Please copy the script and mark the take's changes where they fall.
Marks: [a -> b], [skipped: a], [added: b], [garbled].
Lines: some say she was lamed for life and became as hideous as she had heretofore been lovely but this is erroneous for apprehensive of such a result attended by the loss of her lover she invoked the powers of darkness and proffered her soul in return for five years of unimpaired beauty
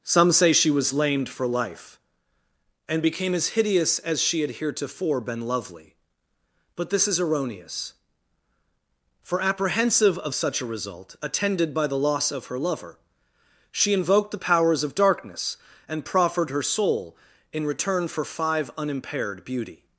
some say she was lamed for life and became as hideous as she had heretofore been lovely but this is erroneous for apprehensive of such a result attended by the loss of her lover she invoked the powers of darkness and proffered her soul in return for five [skipped: years of] unimpaired beauty